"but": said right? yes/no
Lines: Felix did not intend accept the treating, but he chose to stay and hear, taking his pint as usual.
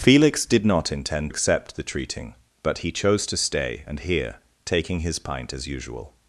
yes